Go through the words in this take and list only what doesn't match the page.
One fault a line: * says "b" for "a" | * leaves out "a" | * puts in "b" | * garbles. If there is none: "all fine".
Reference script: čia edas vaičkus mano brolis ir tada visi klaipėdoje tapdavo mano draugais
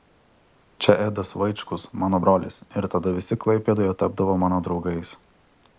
all fine